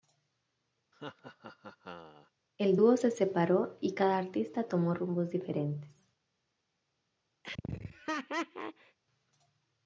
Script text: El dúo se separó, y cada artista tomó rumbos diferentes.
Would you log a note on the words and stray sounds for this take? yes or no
yes